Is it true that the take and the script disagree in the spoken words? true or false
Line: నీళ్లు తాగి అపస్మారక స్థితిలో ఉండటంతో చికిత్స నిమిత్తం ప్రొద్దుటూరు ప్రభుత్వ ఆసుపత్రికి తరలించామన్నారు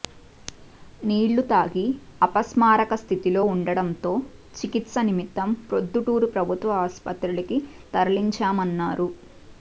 false